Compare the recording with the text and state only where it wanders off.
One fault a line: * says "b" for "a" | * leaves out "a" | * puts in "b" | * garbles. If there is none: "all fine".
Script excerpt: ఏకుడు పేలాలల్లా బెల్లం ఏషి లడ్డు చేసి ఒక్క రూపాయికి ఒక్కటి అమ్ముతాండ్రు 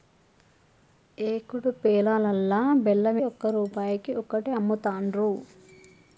* leaves out "ఏషి లడ్డు చేసి"